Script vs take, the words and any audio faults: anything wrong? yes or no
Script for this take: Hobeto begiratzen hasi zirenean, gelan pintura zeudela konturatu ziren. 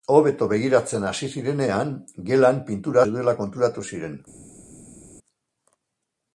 no